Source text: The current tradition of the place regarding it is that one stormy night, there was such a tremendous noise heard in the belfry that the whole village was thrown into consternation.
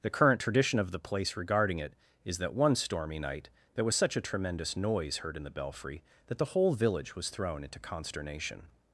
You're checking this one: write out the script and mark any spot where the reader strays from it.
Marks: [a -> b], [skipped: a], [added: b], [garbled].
The current tradition of the place regarding it is that one stormy night, there was such a tremendous noise heard in the belfry that the whole village was thrown into consternation.